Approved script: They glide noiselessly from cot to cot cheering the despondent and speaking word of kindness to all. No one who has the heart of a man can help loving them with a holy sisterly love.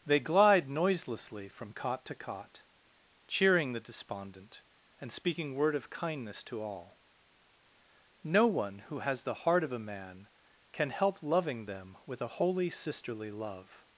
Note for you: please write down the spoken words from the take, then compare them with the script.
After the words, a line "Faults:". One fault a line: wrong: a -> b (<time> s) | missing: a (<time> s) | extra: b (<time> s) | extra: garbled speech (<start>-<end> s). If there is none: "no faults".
They glide noiselessly from cot to cot cheering the despondent and speaking word of kindness to all. No one who has the heart of a man can help loving them with a holy sisterly love.
Faults:
no faults